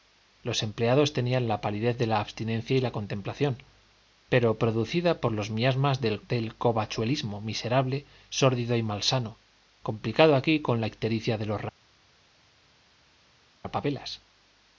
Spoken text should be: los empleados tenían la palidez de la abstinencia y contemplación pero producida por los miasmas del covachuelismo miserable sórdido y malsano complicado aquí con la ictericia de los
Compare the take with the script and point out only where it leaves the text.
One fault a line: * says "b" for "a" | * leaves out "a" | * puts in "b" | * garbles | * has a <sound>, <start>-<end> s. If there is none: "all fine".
* puts in "la"